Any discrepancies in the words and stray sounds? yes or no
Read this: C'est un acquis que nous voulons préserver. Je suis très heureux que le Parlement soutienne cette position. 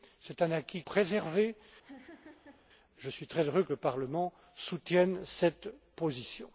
yes